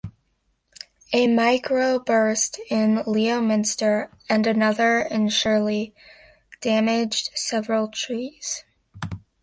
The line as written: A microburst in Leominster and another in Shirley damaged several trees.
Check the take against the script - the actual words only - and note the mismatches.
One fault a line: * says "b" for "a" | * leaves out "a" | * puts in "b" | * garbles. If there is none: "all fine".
all fine